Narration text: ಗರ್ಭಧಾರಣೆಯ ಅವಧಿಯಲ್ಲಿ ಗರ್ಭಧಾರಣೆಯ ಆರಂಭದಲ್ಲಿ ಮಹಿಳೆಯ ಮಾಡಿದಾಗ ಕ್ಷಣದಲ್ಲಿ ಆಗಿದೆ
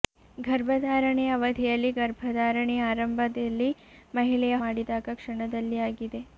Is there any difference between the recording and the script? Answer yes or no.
no